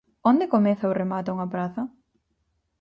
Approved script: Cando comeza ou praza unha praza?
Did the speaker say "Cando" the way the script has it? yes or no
no